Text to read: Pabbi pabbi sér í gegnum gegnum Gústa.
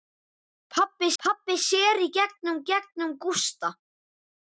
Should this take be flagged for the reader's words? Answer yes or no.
no